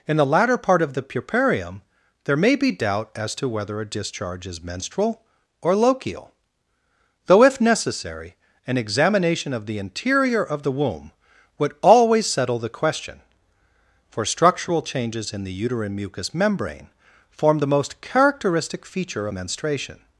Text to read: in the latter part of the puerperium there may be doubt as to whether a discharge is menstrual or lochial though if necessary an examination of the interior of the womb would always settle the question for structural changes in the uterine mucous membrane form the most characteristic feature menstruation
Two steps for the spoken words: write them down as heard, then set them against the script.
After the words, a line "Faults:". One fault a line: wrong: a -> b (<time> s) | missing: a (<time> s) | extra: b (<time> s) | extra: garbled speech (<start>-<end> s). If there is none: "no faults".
in the latter part of the puerperium there may be doubt as to whether a discharge is menstrual or lochial though if necessary an examination of the interior of the womb would always settle the question for structural changes in the uterine mucous membrane form the most characteristic feature menstruation
Faults:
no faults